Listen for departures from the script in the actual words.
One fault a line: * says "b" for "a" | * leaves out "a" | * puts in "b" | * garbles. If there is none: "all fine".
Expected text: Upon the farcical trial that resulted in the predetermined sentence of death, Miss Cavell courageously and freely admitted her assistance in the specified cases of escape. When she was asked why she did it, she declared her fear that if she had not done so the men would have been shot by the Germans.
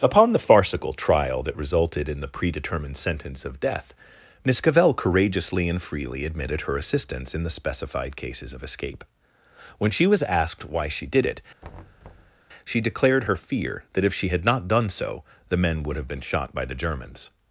all fine